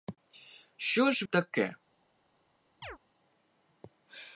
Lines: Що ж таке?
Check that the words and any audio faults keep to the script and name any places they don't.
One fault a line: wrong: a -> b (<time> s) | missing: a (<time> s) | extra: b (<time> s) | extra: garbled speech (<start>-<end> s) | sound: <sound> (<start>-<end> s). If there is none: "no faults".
sound: chirp (2.8-3.0 s)